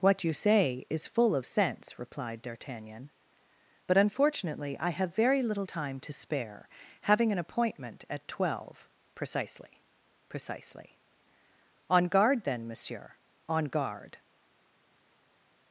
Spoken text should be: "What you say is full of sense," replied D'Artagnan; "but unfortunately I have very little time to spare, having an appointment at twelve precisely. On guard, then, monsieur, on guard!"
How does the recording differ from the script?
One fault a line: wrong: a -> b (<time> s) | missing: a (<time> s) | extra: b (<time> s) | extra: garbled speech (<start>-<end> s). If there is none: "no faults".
extra: precisely (10.3 s)